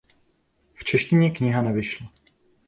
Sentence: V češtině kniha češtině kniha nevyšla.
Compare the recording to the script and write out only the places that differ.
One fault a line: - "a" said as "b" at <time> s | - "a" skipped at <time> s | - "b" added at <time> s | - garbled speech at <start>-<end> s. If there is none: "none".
- "češtině kniha" skipped at 1.6 s